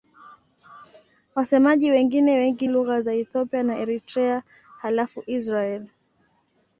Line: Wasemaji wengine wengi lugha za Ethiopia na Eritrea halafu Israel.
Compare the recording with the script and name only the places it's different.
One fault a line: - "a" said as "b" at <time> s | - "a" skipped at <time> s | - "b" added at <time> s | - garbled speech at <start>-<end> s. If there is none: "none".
none